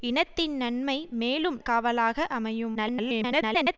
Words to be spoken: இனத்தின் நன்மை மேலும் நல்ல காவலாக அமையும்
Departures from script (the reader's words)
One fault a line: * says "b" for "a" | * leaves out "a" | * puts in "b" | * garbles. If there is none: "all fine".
* leaves out "நல்ல"
* garbles